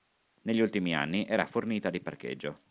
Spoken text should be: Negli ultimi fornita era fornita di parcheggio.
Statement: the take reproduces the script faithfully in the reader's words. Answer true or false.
false